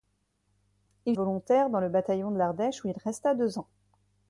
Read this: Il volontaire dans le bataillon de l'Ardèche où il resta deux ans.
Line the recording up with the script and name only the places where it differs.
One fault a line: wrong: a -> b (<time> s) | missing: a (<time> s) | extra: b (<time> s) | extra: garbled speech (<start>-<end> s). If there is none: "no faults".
no faults